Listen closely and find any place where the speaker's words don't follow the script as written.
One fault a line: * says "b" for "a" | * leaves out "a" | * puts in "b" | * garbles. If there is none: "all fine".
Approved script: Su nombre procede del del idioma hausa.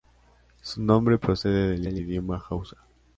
all fine